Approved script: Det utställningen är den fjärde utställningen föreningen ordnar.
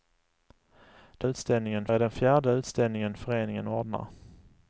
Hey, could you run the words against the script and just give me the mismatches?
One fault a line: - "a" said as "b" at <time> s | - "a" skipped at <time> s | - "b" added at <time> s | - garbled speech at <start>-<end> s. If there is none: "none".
none